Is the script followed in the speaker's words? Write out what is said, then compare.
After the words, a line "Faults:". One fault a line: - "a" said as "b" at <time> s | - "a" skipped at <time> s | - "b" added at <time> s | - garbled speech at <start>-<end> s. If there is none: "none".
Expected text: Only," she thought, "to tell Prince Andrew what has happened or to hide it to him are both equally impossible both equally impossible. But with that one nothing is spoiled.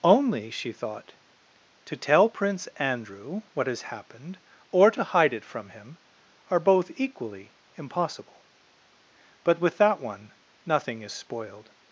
Only," she thought, "to tell Prince Andrew what has happened or to hide it from him are both equally impossible. But with that one nothing is spoiled.
Faults:
- "to" said as "from" at 5.4 s
- "both equally impossible" skipped at 8.5 s